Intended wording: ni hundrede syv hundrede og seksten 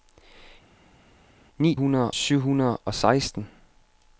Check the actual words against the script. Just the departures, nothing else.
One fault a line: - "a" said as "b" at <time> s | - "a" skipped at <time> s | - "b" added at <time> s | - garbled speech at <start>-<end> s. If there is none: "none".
none